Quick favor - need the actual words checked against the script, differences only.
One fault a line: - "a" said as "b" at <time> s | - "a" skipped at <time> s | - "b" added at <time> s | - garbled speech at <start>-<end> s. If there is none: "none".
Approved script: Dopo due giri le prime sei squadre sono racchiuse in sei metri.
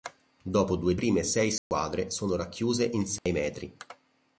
- "giri le" skipped at 0.9 s